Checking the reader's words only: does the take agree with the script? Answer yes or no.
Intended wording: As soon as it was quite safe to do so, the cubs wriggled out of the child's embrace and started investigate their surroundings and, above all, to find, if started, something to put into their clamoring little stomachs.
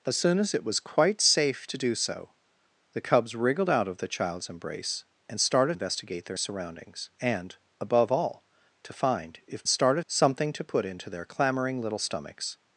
yes